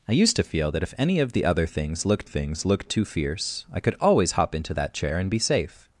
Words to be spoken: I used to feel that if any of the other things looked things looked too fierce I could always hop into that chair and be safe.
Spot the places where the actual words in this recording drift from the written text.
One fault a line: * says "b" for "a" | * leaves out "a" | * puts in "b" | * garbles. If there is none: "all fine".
all fine